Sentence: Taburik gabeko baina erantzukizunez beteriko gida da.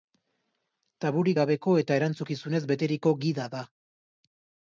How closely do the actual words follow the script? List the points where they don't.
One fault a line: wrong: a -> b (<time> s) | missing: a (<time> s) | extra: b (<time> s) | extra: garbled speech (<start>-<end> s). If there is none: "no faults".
wrong: baina -> eta (1.8 s)